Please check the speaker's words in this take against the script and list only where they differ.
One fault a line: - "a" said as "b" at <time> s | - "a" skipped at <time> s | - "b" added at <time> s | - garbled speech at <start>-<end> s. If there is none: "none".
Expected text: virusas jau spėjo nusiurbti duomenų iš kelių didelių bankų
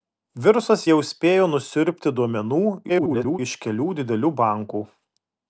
- garbled speech at 2.9-3.4 s